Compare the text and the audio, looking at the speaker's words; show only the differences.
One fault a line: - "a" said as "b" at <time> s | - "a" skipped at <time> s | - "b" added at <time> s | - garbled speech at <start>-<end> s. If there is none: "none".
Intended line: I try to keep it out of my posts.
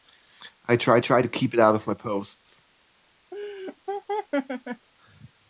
- "try" added at 1.0 s